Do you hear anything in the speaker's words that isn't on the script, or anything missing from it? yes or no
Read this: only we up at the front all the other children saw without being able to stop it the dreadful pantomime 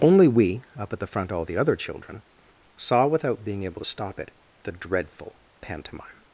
no